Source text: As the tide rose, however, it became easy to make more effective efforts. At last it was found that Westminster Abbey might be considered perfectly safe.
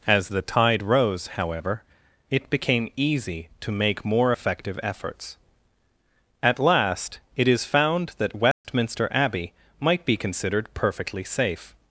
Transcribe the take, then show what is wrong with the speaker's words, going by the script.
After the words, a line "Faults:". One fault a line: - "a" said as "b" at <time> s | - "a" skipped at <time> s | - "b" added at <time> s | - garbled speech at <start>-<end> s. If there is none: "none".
As the tide rose, however, it became easy to make more effective efforts. At last it is found that Westminster Abbey might be considered perfectly safe.
Faults:
- "was" said as "is" at 7.5 s